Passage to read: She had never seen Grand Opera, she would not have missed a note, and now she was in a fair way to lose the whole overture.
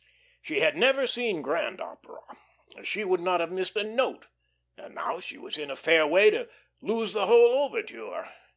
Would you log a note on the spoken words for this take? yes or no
no